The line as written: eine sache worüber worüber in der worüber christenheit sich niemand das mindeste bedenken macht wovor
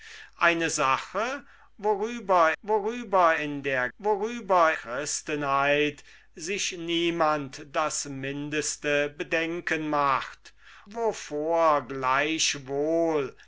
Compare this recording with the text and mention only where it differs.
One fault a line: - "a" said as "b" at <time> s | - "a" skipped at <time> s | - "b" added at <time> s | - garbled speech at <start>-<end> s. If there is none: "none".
none